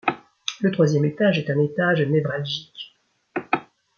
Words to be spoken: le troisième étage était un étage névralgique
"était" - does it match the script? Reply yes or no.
no